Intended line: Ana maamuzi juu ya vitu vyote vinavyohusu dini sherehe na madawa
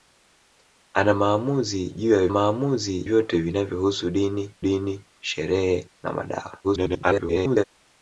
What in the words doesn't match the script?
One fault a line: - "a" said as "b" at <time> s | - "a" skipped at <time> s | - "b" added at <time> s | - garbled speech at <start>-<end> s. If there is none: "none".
- "vitu" said as "maamuzi" at 2.3 s
- "dini" added at 4.6 s
- garbled speech at 6.6-7.6 s